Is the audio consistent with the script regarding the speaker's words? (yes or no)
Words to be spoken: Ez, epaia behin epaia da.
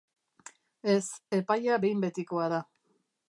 no